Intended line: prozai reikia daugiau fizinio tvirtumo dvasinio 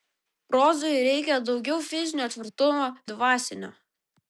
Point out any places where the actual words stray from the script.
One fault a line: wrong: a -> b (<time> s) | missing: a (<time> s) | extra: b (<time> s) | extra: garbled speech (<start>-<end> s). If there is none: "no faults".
no faults